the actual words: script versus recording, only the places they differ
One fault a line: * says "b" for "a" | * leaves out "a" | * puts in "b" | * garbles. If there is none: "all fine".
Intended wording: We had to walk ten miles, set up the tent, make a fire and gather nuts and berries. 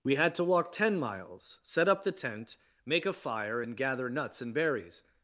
all fine